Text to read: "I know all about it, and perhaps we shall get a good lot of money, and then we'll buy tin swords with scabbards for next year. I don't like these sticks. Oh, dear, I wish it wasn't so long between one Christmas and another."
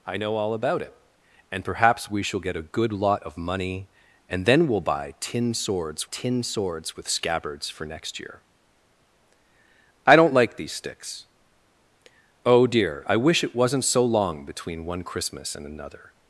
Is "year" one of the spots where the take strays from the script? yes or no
no